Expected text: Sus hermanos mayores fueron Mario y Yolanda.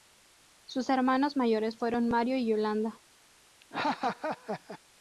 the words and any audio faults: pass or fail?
fail